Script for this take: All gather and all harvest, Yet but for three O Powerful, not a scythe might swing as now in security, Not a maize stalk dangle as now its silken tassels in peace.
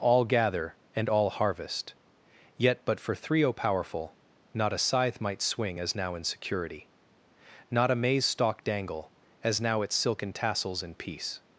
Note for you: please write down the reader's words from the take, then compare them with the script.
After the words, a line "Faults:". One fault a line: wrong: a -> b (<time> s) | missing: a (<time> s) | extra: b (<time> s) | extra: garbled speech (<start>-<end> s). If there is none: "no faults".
All gather and all harvest, Yet but for three O Powerful, not a scythe might swing as now in security, Not a maize stalk dangle as now its silken tassels in peace.
Faults:
no faults